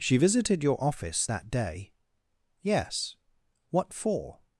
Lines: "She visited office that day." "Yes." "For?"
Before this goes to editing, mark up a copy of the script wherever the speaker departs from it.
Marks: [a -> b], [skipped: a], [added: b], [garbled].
"She visited [added: your] office that day." "Yes." [added: What] "For?"